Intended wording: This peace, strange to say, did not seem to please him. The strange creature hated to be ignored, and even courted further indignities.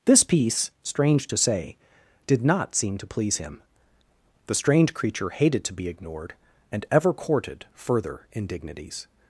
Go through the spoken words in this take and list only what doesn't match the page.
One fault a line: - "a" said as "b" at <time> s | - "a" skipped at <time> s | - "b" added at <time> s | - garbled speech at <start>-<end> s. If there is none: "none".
- "even" said as "ever" at 6.9 s